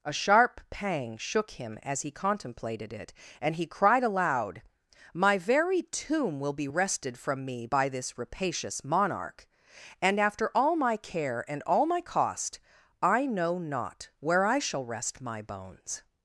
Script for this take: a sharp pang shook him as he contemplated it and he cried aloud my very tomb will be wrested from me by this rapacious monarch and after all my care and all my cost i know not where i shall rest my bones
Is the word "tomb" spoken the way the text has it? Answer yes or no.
yes